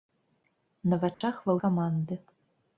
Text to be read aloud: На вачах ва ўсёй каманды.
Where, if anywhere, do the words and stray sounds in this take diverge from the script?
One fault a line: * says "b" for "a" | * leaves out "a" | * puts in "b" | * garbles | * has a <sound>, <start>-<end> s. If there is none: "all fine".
* has a dropout, 1.1-1.2 s
* leaves out "ўсёй"